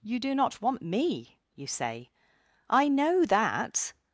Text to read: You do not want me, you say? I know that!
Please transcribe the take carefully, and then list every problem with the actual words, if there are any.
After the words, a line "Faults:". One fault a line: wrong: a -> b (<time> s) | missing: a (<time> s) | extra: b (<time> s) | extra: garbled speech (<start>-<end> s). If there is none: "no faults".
You do not want me, you say? I know that!
Faults:
no faults